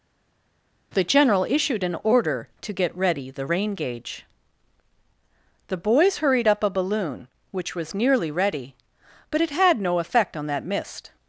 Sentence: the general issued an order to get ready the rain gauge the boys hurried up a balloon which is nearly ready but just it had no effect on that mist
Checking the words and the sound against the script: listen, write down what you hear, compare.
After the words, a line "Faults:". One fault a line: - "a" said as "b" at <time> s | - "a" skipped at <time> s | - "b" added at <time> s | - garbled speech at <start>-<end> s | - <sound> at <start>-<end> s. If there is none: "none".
the general issued an order to get ready the rain gauge the boys hurried up a balloon which was nearly ready but it had no effect on that mist
Faults:
- "is" said as "was" at 7.8 s
- "just" skipped at 9.4 s